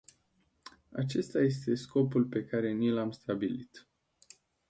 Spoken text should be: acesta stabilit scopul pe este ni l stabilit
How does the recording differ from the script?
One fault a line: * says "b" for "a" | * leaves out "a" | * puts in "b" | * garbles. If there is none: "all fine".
* says "este" for "stabilit"
* says "care" for "este"
* puts in "am"